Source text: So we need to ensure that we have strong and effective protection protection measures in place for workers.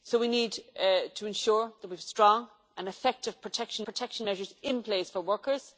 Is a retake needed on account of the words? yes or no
no